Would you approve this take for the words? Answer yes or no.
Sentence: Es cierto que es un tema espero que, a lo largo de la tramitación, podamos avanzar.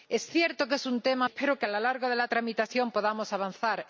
yes